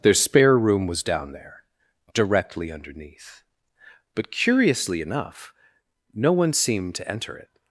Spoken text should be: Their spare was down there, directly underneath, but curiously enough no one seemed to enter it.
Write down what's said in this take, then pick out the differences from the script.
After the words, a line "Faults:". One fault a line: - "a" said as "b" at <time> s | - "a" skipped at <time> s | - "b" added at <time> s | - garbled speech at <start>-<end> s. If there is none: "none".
Their spare room was down there, directly underneath, but curiously enough no one seemed to enter it.
Faults:
- "room" added at 0.6 s